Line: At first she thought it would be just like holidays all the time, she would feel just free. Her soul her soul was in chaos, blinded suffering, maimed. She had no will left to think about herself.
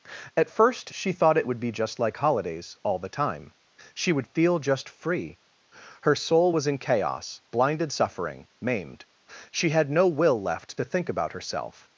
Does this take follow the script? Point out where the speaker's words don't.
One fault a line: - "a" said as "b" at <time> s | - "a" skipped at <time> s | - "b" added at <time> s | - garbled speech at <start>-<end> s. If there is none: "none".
- "her soul" skipped at 6.5 s